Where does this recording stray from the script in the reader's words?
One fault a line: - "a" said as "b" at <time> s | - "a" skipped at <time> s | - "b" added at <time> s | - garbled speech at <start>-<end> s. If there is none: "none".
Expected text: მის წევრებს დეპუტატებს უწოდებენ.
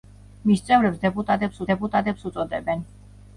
- "დეპუტატებს" added at 1.7 s